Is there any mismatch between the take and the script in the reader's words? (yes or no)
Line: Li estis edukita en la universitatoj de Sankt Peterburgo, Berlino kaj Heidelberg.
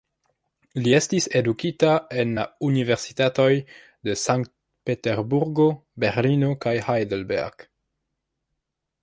no